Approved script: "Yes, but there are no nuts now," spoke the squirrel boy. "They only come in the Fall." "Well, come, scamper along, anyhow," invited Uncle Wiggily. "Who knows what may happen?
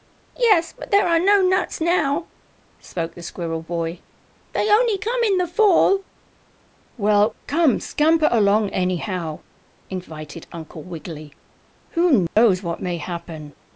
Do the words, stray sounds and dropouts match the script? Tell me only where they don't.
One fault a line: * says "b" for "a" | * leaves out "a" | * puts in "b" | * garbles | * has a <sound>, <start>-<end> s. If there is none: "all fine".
* has a dropout, 12.3-12.4 s